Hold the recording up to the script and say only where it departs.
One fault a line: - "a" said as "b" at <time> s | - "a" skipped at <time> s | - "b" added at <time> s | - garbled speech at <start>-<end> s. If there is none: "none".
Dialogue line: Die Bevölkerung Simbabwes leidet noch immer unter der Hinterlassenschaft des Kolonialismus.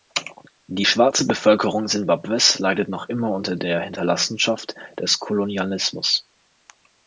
- "schwarze" added at 0.9 s